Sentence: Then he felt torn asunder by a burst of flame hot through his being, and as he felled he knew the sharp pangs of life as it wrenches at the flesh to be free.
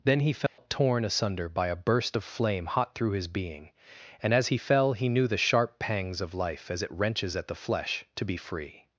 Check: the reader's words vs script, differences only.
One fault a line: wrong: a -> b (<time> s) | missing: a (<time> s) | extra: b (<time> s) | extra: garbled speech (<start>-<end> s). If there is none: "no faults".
wrong: felled -> fell (4.6 s)